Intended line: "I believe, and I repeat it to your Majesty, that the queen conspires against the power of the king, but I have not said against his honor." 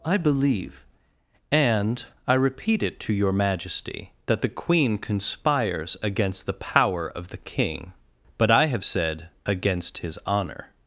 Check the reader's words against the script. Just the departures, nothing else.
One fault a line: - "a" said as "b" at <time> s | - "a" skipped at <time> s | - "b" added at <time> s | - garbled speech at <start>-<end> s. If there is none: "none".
- "not" skipped at 8.9 s